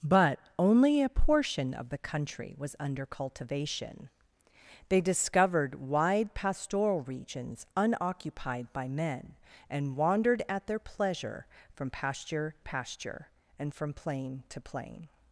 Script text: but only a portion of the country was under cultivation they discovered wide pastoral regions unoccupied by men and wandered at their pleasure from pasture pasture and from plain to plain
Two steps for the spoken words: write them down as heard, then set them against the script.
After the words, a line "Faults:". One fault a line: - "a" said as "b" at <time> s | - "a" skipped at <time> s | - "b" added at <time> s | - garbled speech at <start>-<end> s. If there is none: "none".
but only a portion of the country was under cultivation they discovered wide pastoral regions unoccupied by men and wandered at their pleasure from pasture pasture and from plain to plain
Faults:
none